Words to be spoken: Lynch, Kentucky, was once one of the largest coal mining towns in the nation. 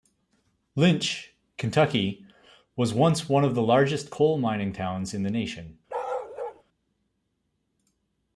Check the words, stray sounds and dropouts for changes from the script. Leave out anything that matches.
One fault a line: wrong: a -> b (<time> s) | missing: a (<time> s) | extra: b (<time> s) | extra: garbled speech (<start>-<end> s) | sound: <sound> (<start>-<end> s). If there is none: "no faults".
sound: bark (5.9-6.6 s)